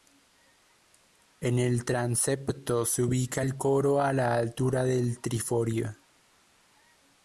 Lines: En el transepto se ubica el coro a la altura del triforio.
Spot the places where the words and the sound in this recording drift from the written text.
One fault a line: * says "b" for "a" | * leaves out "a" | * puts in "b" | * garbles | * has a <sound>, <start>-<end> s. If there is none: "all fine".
all fine